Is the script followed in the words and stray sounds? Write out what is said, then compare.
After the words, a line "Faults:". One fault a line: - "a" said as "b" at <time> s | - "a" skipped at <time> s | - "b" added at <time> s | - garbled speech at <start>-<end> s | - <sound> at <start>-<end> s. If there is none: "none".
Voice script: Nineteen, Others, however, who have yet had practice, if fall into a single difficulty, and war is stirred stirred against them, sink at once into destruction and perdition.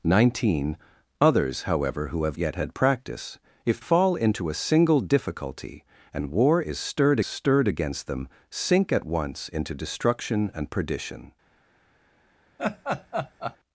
Nineteen, Others, however, who have yet had practice, if fall into a single difficulty, and war is stirred stirred against them, sink at once into destruction and perdition.
Faults:
- laugh at 12.6-13.6 s